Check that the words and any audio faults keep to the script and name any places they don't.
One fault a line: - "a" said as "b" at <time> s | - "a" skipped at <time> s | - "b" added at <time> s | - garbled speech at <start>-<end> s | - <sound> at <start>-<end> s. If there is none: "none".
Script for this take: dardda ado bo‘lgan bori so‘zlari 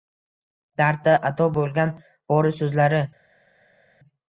none